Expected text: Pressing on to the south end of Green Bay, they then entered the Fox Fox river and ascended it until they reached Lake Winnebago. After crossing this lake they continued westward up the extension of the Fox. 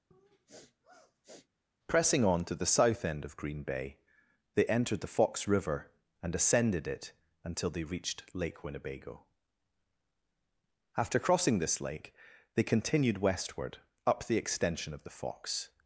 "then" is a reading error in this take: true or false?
true